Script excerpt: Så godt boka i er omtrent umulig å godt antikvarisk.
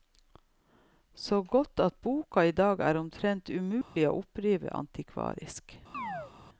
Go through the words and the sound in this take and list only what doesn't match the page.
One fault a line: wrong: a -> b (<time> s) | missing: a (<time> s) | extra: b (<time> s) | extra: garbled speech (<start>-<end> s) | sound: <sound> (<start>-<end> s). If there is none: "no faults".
extra: at (1.8 s)
extra: dag (2.5 s)
sound: dropout (3.8-4.0 s)
wrong: godt -> oppdrive (4.2 s)
sound: chirp (5.9-6.3 s)